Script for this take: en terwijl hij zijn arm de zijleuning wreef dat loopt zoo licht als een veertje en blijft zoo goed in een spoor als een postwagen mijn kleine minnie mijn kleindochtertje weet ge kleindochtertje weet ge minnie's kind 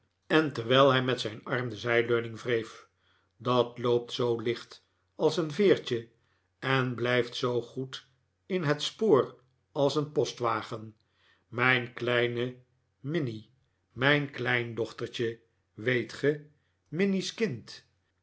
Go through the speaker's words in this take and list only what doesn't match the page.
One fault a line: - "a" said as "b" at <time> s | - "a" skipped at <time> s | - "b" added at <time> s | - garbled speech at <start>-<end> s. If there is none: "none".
- "met" added at 1.0 s
- "een" said as "het" at 8.6 s
- "kleindochtertje weet ge" skipped at 16.5 s